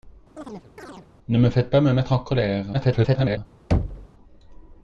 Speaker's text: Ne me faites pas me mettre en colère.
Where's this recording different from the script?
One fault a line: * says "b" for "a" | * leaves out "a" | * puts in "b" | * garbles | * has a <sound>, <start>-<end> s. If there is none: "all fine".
* has a chirp, 0.4-1.1 s
* garbles
* has a thud, 3.7-4.1 s